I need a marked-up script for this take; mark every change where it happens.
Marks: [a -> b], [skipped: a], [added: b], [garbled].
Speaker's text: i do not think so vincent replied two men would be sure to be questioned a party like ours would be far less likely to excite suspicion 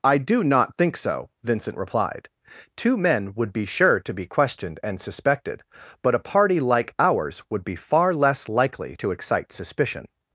i do not think so vincent replied two men would be sure to be questioned [added: and suspected but] a party like ours would be far less likely to excite suspicion